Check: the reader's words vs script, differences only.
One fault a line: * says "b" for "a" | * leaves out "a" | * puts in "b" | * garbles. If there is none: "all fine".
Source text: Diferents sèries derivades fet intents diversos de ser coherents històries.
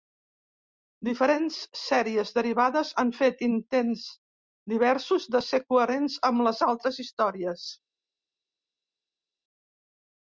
* puts in "han"
* puts in "amb les altres"